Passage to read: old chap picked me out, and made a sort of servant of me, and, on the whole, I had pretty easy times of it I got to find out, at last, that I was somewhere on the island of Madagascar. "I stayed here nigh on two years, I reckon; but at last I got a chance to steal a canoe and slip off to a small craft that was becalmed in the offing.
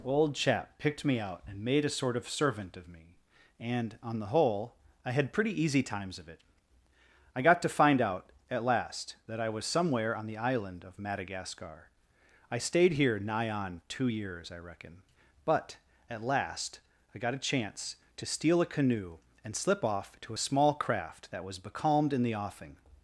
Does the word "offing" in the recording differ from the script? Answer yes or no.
no